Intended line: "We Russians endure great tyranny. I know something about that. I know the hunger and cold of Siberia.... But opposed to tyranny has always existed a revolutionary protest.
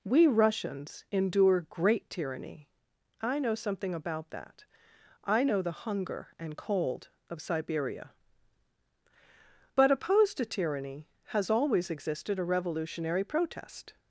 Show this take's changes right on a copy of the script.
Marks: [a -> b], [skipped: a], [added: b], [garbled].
"We Russians endure great tyranny. I know something about that. I know the hunger and cold of Siberia.... But opposed to tyranny has always existed a revolutionary protest.